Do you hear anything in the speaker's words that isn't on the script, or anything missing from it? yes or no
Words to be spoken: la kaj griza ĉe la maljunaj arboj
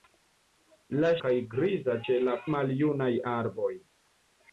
no